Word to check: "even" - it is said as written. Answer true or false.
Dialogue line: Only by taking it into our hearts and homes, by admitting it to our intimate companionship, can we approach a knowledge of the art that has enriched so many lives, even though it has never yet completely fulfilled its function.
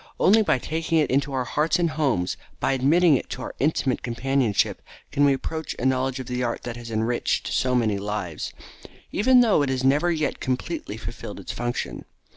true